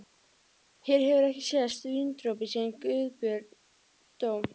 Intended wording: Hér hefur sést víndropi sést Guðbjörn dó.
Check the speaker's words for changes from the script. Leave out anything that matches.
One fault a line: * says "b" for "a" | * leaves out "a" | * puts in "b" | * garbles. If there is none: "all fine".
* puts in "ekki"
* says "síðan" for "sést"